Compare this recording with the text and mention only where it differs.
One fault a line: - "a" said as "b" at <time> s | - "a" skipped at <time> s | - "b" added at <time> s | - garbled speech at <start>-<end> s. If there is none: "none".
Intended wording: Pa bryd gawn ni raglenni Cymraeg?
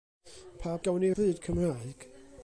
- "bryd" skipped at 0.8 s
- "raglenni" said as "bryd" at 1.1 s